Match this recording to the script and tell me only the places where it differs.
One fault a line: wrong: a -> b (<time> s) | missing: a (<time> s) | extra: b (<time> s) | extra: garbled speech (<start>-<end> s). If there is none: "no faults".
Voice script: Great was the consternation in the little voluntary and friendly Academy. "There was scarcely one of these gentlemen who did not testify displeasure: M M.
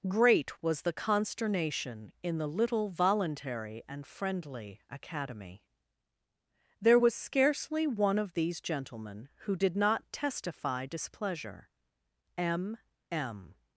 no faults